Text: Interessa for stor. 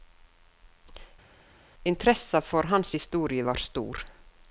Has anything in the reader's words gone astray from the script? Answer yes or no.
yes